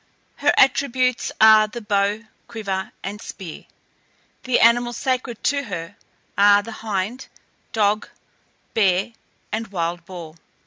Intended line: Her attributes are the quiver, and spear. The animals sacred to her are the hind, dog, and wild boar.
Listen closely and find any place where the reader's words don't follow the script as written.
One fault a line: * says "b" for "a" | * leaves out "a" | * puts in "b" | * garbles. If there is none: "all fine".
* puts in "bow"
* puts in "bear"